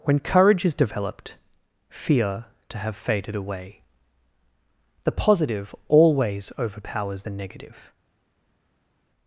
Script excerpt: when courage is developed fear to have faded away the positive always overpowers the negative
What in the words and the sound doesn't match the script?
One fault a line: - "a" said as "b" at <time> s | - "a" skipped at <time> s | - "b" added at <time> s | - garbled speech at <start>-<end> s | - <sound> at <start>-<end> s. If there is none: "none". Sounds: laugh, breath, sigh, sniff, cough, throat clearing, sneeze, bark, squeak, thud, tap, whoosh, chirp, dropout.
none